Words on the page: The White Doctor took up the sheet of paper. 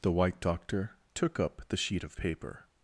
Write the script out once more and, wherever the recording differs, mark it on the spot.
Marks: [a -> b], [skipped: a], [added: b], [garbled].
The White Doctor took up the sheet of paper.